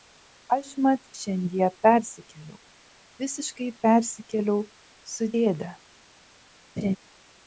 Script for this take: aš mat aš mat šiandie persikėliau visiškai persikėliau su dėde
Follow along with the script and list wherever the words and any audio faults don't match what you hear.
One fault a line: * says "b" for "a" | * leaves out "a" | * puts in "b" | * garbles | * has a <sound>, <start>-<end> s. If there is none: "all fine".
* leaves out "aš mat"
* has a laugh, 6.8-7.0 s